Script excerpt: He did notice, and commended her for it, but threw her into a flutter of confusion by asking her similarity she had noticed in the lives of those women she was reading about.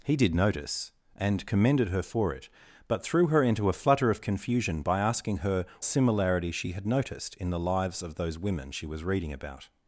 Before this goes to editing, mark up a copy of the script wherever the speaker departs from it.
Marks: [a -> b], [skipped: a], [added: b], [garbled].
He did notice, and commended her for it, but threw her into a flutter of confusion by asking her similarity she had noticed in the lives of those women she was reading about.